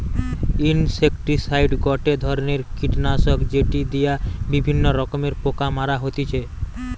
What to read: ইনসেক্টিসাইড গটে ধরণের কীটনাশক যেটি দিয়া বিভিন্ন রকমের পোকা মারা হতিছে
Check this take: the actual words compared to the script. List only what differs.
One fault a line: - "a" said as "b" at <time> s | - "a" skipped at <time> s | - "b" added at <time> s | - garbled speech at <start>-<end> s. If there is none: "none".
none